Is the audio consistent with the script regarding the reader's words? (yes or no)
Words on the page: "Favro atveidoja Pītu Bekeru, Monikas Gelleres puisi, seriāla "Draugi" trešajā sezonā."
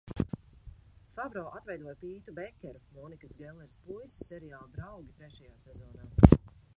yes